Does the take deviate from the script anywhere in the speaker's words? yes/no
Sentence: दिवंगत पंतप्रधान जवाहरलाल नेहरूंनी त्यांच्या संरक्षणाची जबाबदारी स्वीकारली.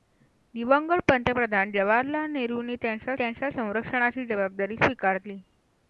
yes